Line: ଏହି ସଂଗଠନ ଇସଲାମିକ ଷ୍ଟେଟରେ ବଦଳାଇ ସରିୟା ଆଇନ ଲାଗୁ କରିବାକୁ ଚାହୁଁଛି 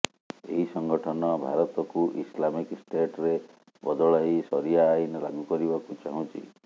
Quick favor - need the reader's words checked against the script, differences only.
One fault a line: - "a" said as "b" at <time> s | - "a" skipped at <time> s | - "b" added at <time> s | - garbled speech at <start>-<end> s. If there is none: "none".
- "ଭାରତକୁ" added at 1.4 s